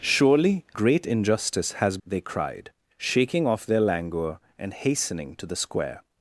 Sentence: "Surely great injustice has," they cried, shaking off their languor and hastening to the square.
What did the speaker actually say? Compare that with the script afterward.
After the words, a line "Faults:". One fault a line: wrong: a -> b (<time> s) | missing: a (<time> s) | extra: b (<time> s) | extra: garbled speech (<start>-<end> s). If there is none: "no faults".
"Surely great injustice has," they cried, shaking off their languor and hastening to the square.
Faults:
no faults